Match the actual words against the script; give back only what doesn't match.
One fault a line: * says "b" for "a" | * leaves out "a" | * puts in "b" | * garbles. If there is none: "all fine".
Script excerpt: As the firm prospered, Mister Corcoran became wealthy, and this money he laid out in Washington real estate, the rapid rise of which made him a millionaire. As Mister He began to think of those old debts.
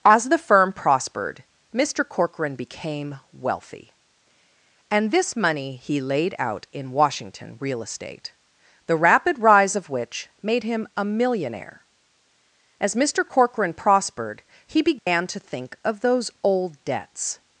* puts in "Corcoran prospered"